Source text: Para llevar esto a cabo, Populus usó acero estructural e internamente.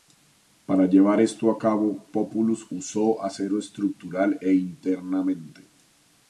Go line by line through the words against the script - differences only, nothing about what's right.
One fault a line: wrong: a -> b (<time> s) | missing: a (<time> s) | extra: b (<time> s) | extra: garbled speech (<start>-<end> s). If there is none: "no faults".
no faults